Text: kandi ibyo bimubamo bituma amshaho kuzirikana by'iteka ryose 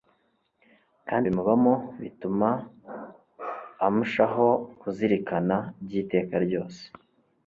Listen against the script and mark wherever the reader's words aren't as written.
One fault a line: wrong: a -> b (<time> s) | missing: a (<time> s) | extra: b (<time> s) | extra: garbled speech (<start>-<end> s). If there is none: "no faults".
missing: ibyo (1.2 s)